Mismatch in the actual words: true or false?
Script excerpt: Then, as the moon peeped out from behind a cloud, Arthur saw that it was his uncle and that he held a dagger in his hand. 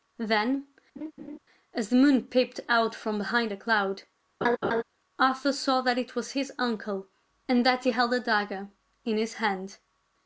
false